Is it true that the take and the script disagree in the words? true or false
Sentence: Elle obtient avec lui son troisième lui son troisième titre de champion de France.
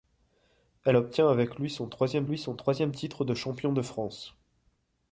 false